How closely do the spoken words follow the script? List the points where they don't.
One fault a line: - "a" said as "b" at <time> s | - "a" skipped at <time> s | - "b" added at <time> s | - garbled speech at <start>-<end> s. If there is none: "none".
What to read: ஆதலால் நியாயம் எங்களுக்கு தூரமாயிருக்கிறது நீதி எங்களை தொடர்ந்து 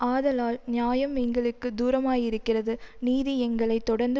none